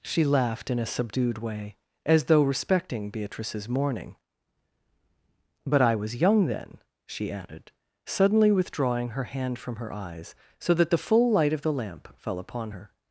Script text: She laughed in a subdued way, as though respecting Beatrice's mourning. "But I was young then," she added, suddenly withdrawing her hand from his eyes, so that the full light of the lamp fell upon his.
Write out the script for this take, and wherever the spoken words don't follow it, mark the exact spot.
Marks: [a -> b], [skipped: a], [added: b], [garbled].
She laughed in a subdued way, as though respecting Beatrice's mourning. "But I was young then," she added, suddenly withdrawing her hand from [his -> her] eyes, so that the full light of the lamp fell upon [his. -> her]